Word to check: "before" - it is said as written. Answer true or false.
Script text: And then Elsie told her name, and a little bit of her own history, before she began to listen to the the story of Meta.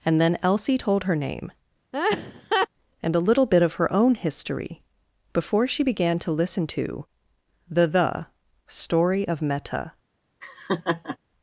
true